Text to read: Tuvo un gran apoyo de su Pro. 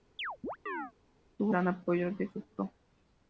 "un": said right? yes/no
no